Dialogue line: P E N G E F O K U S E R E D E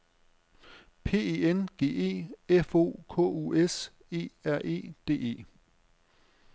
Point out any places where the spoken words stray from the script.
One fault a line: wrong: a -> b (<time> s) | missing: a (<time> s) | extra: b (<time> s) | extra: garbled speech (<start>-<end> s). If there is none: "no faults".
no faults